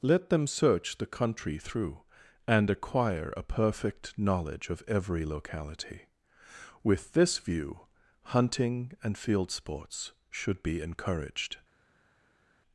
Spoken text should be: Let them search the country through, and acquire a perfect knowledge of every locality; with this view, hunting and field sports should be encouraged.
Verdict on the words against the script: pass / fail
pass